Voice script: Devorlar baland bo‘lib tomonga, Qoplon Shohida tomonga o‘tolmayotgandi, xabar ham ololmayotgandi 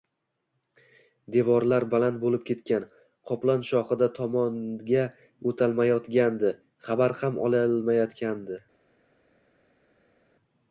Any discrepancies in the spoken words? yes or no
yes